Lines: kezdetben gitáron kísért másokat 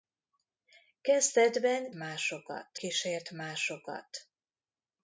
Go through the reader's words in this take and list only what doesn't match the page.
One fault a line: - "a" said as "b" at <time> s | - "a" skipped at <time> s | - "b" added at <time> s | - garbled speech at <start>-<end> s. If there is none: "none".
- "gitáron" said as "másokat" at 1.9 s